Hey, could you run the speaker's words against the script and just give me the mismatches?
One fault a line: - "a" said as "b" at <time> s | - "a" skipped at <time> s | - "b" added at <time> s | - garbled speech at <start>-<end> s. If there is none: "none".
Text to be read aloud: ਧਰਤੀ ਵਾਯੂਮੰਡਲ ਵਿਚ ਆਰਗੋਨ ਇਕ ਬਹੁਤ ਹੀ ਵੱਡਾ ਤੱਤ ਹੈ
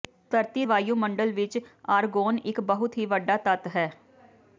none